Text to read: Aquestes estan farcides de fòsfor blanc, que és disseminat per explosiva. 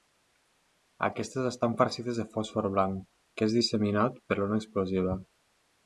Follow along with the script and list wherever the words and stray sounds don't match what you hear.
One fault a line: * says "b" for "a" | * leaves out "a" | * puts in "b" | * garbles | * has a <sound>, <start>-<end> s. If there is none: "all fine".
* puts in "l'ona"